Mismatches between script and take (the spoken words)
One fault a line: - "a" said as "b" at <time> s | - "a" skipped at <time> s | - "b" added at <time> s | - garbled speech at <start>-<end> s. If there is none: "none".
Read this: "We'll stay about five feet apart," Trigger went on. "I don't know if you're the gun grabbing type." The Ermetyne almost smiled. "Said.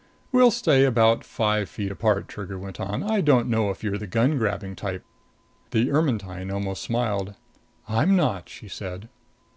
- "I'm not she" added at 7.9 s